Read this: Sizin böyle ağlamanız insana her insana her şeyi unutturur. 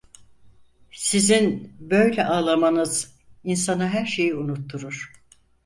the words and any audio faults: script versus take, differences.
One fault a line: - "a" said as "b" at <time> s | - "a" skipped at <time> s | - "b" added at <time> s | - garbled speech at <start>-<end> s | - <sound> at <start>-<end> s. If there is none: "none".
- "insana her" skipped at 4.1 s